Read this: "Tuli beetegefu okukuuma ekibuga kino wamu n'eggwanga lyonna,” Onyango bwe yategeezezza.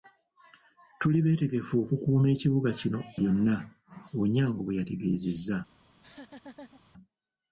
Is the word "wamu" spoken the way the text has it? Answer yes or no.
no